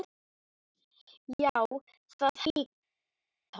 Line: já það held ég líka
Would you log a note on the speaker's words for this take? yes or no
yes